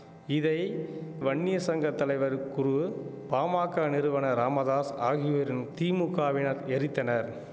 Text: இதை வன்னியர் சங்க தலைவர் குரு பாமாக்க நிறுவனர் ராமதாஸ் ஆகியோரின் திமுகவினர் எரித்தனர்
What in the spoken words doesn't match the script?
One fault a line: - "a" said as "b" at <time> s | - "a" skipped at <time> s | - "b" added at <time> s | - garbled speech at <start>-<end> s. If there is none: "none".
none